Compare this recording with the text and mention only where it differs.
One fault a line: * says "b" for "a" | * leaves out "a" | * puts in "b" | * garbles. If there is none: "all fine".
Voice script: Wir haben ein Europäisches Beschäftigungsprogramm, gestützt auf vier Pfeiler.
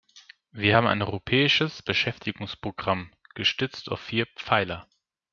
all fine